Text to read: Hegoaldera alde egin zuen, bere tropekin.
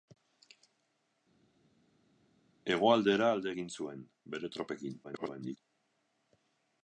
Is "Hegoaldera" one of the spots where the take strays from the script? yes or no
no